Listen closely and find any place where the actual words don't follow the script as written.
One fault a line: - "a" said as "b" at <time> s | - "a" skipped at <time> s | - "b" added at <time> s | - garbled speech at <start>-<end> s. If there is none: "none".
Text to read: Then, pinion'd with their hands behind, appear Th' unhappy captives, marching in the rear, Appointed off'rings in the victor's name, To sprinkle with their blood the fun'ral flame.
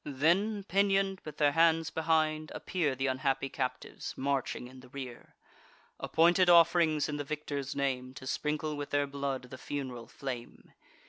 none